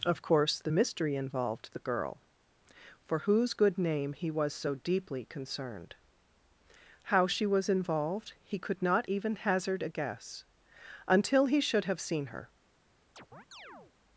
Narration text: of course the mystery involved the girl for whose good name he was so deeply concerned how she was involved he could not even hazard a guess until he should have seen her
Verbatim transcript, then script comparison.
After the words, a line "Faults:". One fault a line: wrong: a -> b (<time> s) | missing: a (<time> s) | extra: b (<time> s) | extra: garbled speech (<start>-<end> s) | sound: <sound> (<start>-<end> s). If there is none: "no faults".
of course the mystery involved the girl for whose good name he was so deeply concerned how she was involved he could not even hazard a guess until he should have seen her
Faults:
sound: chirp (13.2-13.9 s)